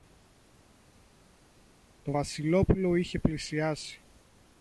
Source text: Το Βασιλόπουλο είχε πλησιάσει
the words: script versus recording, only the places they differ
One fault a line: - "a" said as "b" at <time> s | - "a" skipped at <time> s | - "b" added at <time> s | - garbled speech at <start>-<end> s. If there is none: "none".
none